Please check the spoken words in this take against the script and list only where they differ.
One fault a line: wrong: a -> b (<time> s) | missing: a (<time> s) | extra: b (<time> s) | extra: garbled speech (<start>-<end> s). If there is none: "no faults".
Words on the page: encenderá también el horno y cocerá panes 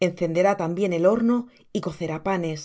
no faults